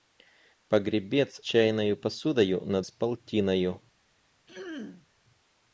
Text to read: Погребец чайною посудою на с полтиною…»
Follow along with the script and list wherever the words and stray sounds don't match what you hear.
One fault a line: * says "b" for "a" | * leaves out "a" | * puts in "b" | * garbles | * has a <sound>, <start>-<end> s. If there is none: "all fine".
* has a throat clearing, 4.5-5.1 s